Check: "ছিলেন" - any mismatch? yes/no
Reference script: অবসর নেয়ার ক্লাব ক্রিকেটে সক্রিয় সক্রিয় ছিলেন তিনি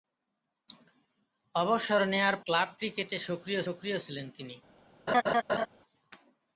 no